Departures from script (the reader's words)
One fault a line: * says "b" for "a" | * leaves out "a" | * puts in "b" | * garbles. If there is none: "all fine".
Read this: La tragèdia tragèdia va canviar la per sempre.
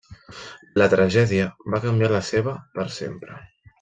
* leaves out "tragèdia"
* puts in "seva"